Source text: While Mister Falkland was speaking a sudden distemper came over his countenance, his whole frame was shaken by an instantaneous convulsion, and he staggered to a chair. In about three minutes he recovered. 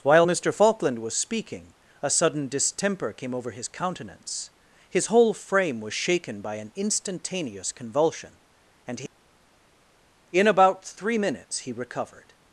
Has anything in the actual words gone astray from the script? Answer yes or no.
yes